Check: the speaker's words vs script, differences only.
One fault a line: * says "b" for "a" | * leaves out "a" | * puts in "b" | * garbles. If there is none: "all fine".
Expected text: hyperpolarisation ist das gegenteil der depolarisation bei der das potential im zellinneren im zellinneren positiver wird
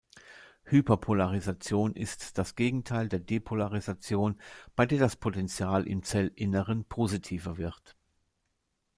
* leaves out "im zellinneren"